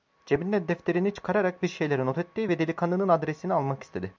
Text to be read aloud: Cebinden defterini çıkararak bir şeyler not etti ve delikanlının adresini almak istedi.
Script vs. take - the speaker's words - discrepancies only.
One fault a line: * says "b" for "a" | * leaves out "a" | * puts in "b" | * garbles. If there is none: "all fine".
all fine